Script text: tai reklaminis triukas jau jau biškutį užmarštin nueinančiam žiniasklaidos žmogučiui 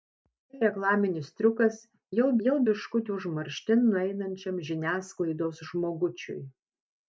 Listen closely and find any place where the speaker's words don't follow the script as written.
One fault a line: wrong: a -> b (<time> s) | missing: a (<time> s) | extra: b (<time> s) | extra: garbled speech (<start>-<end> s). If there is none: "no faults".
no faults